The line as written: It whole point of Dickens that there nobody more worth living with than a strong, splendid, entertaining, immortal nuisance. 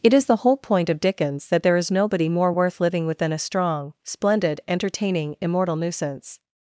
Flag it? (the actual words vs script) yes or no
yes